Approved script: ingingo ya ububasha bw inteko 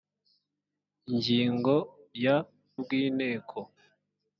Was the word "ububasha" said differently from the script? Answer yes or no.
yes